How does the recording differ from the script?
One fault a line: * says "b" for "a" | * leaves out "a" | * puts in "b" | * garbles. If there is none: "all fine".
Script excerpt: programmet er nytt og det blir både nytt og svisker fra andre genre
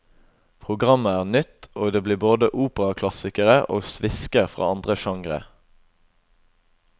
* says "operaklassikere" for "nytt"